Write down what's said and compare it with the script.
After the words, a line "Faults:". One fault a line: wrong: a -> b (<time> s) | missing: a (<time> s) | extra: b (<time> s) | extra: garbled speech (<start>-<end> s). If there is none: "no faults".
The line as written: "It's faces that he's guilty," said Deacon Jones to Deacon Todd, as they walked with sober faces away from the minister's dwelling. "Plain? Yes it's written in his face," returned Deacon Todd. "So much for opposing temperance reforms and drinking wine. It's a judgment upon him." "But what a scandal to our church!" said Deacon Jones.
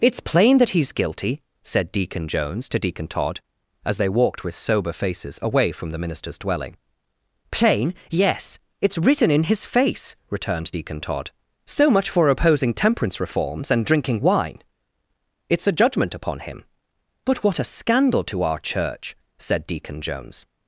"It's plain that he's guilty," said Deacon Jones to Deacon Todd, as they walked with sober faces away from the minister's dwelling. "Plain? Yes it's written in his face," returned Deacon Todd. "So much for opposing temperance reforms and drinking wine. It's a judgment upon him." "But what a scandal to our church!" said Deacon Jones.
Faults:
wrong: faces -> plain (0.2 s)